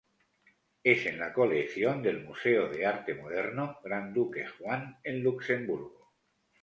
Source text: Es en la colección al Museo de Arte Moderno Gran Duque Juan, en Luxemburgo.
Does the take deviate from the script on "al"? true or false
true